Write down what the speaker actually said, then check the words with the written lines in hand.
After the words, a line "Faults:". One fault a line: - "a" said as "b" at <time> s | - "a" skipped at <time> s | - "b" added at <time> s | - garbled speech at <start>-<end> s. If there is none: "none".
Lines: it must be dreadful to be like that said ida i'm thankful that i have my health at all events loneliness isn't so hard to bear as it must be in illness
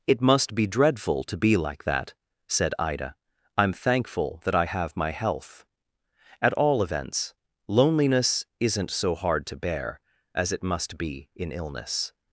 it must be dreadful to be like that said ida i'm thankful that i have my health at all events loneliness isn't so hard to bear as it must be in illness
Faults:
none